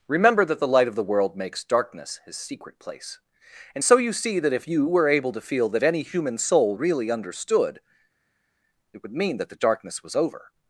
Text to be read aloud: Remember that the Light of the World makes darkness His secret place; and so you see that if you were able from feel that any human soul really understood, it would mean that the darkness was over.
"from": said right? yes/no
no